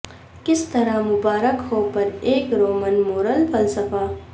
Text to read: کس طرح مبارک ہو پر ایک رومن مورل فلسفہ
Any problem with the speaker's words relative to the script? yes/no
no